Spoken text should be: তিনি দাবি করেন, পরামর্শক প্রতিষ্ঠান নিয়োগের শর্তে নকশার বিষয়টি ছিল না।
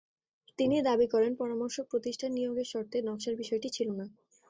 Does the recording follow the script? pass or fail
pass